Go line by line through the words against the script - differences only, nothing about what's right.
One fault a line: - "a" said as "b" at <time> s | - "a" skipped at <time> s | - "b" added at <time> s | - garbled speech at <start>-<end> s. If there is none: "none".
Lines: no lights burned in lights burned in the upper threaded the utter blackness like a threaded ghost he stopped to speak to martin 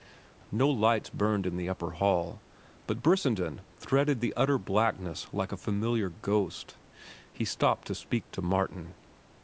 - "lights burned in the upper" said as "the upper hall but brissenden" at 1.6 s
- "threaded" said as "familiar" at 5.6 s